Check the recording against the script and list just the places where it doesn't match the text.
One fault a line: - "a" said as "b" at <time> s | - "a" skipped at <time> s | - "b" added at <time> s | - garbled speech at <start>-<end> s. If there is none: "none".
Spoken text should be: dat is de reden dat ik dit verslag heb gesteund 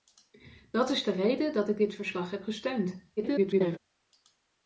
- garbled speech at 3.2-3.8 s